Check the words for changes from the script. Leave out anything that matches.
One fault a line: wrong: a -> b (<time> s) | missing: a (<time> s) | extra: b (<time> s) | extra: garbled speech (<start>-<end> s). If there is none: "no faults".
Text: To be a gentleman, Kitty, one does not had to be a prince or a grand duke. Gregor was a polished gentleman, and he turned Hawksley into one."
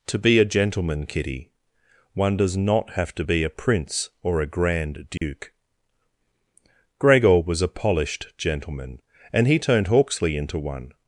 wrong: had -> have (2.9 s)